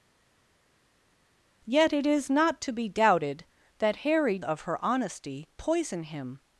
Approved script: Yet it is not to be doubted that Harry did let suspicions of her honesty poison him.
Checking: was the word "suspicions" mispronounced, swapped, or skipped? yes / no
yes